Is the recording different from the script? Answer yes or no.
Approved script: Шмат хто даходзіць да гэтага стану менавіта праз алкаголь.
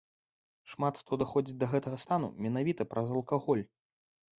no